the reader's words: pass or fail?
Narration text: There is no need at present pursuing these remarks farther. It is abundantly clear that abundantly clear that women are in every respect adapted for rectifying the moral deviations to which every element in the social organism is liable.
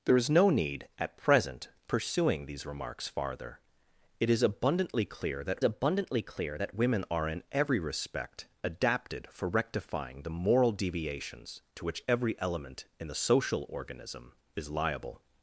pass